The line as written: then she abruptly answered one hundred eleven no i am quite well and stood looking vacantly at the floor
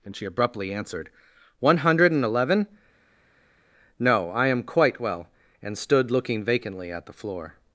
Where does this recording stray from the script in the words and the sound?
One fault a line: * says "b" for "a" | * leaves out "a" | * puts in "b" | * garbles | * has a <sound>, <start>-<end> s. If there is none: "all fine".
* says "and" for "then"
* puts in "and"